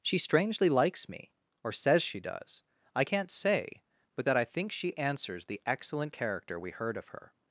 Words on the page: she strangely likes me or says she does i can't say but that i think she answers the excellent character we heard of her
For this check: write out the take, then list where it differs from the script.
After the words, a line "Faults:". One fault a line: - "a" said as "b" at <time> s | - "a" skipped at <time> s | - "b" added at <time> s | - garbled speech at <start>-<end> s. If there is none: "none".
she strangely likes me or says she does i can't say but that i think she answers the excellent character we heard of her
Faults:
none